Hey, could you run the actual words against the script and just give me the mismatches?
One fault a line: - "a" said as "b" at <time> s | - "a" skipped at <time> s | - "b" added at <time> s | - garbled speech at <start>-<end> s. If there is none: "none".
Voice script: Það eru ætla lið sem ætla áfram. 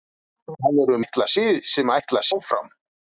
none